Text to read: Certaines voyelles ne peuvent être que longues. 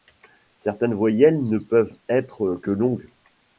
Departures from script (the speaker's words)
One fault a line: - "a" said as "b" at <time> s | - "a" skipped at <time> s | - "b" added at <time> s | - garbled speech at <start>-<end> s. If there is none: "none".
none